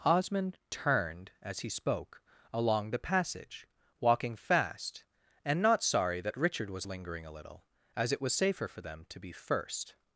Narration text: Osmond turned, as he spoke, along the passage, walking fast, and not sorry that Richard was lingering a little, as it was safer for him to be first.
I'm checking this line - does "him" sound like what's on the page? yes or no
no